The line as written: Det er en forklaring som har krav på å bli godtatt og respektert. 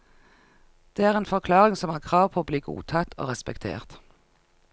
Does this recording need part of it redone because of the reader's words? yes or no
no